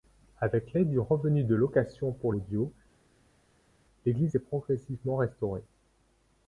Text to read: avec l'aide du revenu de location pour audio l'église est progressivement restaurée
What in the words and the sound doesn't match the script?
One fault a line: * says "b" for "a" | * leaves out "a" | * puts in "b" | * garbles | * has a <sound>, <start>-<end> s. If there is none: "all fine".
all fine